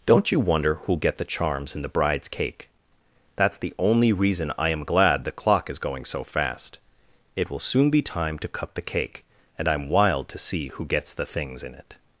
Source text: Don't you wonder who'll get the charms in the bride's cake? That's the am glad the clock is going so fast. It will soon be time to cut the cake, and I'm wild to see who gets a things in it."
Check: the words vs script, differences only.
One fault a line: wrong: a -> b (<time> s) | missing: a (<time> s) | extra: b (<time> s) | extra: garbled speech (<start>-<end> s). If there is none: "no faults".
extra: only reason I (3.8 s)
wrong: a -> the (11.1 s)